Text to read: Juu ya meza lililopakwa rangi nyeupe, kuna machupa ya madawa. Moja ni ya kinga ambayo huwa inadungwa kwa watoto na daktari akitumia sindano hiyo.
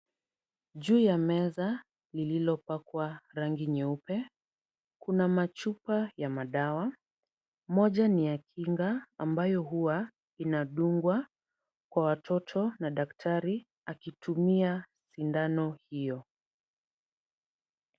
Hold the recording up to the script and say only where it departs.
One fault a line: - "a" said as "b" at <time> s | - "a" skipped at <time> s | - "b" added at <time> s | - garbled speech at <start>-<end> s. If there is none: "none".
none